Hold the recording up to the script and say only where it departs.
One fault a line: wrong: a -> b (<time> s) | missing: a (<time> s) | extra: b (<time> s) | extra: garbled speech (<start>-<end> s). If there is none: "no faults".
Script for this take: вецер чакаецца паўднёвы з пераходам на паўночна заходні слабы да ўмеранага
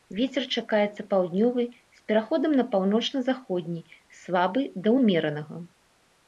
no faults